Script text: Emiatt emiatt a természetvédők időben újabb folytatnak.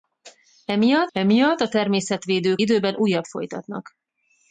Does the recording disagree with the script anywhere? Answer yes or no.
no